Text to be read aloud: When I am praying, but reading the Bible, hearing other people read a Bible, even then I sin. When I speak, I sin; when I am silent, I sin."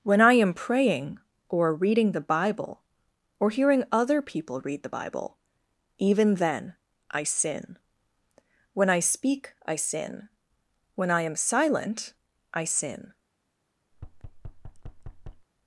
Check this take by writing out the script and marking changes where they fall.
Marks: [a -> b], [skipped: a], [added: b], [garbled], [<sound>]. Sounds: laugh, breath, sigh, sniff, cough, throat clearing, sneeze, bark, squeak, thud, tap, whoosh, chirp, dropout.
When I am praying, [but -> or] reading the Bible, [added: or] hearing other people read [a -> the] Bible, even then I sin. When I speak, I sin; when I am silent, I sin." [thud]